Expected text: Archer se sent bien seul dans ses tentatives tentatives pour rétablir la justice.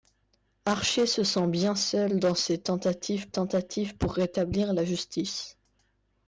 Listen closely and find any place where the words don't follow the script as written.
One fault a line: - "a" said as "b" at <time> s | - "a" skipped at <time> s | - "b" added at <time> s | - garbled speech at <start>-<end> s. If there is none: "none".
none